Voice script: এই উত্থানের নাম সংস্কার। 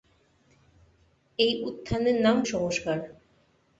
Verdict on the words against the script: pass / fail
pass